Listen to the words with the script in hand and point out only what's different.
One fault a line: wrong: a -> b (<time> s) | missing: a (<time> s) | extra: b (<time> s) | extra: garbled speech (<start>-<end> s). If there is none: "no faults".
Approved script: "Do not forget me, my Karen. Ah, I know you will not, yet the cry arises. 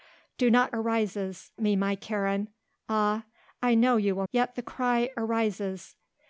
wrong: forget -> arises (0.7 s)
missing: not (4.3 s)